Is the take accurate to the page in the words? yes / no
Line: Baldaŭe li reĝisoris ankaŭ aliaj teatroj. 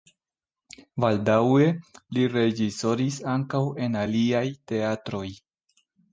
no